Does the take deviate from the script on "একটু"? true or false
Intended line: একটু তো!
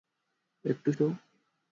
false